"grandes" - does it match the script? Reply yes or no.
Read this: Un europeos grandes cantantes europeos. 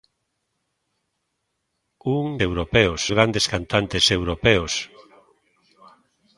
yes